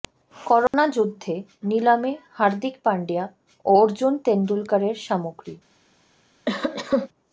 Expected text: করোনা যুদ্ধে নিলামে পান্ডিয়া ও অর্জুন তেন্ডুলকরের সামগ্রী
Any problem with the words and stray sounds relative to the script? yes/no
yes